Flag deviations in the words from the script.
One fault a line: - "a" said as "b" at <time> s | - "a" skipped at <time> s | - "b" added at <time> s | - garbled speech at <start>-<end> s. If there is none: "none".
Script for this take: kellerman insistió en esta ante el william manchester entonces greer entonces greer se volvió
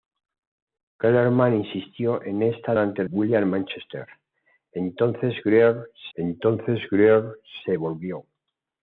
none